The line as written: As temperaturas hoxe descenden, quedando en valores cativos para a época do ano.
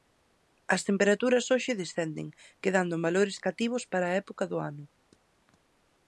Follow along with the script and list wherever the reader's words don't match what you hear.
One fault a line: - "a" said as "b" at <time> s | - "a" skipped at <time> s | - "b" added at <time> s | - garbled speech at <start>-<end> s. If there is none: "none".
none